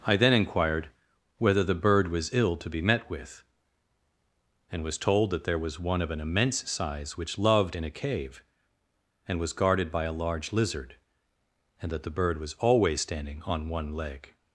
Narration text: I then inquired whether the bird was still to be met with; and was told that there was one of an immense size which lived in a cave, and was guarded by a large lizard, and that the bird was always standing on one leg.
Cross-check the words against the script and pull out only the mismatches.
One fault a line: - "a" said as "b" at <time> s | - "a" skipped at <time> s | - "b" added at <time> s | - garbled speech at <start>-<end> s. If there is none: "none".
- "still" said as "ill" at 2.3 s
- "lived" said as "loved" at 7.4 s